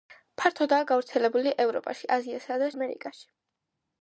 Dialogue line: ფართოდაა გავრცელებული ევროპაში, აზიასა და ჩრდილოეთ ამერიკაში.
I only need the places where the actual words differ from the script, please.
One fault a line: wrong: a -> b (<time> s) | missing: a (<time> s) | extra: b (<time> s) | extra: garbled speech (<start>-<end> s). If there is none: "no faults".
missing: ჩრდილოეთ (2.7 s)